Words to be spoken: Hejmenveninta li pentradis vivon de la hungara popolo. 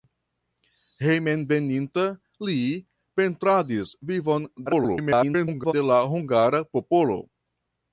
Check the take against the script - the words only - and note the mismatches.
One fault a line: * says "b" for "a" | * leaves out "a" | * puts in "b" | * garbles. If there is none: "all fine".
* garbles